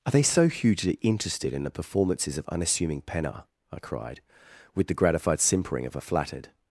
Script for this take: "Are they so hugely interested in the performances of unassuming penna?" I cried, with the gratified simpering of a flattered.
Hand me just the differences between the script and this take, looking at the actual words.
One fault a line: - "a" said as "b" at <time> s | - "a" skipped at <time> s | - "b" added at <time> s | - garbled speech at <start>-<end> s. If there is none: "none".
none